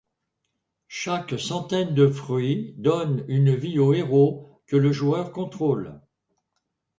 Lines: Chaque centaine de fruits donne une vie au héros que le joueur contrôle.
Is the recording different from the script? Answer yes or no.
no